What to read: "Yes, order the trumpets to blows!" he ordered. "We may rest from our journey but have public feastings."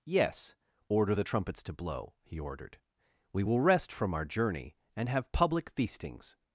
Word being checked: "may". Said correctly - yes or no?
no